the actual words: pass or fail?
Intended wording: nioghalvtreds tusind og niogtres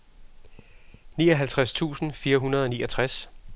fail